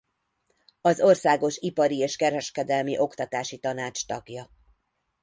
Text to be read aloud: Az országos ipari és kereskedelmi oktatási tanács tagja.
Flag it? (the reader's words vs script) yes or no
no